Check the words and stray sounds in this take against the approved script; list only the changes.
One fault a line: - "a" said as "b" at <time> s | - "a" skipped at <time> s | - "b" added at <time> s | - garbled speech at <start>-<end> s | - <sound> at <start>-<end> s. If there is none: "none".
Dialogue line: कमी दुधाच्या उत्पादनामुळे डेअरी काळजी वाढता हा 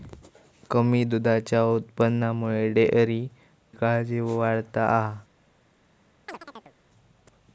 - chirp at 6.3-6.7 s